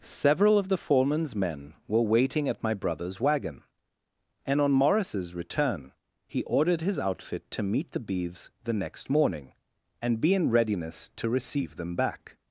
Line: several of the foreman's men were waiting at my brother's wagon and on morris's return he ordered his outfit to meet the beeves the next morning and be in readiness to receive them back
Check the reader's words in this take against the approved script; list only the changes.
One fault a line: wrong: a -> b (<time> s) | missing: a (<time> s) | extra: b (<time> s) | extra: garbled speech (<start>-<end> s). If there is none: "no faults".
no faults